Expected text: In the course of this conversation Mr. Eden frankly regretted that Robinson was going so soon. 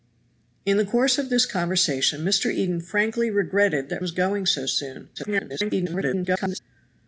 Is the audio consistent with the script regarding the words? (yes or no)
no